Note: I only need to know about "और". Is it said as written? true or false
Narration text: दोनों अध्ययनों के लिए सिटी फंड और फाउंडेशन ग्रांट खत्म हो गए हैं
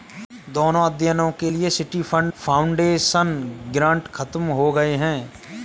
false